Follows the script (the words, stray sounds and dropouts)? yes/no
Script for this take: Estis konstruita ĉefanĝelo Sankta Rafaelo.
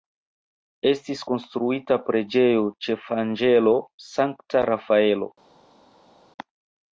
no